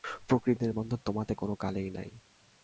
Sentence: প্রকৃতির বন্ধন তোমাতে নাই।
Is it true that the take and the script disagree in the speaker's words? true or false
true